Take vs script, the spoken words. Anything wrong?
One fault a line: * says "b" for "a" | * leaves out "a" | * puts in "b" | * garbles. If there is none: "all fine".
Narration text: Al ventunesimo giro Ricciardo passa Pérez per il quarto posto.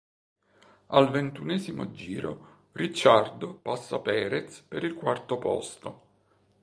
all fine